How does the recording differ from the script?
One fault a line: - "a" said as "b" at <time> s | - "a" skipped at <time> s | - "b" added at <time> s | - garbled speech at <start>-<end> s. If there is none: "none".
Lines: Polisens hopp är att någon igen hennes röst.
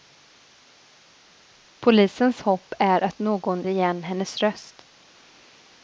none